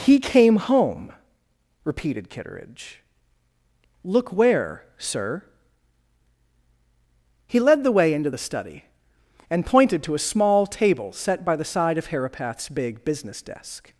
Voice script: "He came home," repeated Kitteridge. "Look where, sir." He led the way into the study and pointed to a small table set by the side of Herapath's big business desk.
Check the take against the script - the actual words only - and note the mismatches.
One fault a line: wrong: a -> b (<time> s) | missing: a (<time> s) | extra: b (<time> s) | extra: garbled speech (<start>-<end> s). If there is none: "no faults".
no faults